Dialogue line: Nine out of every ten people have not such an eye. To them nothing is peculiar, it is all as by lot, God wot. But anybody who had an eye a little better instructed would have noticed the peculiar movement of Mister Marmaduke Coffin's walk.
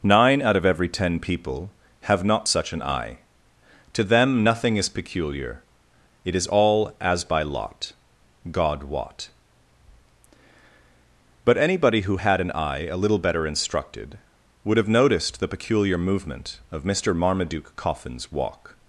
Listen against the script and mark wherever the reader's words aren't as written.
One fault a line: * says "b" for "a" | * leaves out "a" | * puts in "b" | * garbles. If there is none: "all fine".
all fine